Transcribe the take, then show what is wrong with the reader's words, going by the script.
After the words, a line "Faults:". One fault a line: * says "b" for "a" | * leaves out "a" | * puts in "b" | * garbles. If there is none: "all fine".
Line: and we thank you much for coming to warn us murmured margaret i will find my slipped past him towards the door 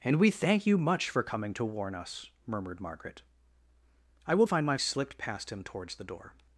and we thank you much for coming to warn us murmured margaret i will find my slipped past him towards the door
Faults:
all fine